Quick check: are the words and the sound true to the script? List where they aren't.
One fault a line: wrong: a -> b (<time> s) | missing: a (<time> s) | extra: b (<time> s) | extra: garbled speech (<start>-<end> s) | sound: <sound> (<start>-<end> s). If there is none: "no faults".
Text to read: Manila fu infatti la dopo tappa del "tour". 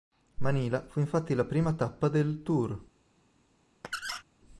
wrong: dopo -> prima (1.4 s)
sound: squeak (3.8-4.2 s)